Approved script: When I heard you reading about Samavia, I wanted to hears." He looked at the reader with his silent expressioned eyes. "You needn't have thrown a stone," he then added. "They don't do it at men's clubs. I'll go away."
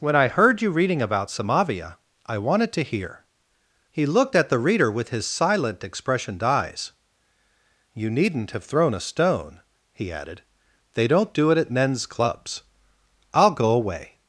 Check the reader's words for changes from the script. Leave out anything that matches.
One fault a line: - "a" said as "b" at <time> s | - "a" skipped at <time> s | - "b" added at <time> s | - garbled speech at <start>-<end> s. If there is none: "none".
- "hears" said as "hear" at 2.8 s
- "then" skipped at 10.1 s